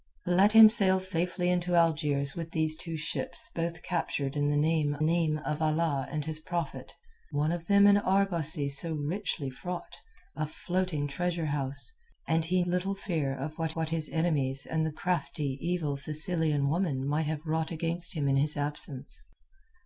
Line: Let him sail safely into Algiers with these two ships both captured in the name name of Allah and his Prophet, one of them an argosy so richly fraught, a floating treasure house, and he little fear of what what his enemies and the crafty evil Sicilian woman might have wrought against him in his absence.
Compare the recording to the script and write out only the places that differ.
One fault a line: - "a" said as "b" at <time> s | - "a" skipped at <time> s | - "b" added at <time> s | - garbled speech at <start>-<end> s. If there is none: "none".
none